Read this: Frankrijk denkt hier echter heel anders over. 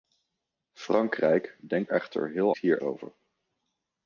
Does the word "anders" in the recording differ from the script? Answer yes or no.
yes